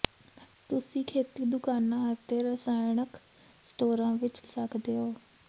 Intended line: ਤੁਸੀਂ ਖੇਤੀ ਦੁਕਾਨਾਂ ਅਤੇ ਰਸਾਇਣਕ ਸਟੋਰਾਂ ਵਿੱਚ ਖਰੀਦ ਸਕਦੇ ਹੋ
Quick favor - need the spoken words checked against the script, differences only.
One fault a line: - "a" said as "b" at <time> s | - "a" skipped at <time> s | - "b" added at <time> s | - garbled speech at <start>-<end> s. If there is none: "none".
- "ਖਰੀਦ" skipped at 4.4 s